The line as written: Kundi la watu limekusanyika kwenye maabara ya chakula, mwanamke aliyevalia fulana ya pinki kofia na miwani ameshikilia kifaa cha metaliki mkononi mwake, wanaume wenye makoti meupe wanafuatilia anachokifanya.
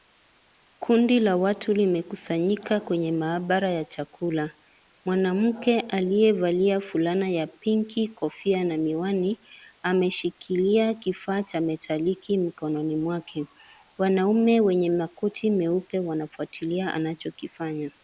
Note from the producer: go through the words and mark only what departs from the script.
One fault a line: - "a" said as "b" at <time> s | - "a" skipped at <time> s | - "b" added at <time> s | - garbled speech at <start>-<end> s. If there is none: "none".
none